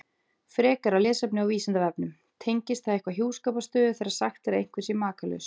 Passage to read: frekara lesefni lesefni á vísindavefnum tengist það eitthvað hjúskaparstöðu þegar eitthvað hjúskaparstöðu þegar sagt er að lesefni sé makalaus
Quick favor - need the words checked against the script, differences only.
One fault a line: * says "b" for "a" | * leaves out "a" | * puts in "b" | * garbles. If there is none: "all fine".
* leaves out "lesefni"
* leaves out "eitthvað hjúskaparstöðu þegar"
* says "einhver" for "lesefni"